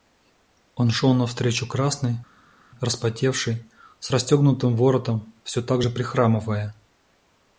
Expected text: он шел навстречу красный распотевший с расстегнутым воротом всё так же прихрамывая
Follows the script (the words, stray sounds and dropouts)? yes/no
yes